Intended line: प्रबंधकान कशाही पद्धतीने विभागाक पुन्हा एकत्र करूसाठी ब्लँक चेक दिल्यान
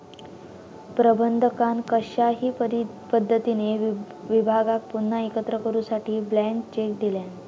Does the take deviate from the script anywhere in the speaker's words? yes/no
no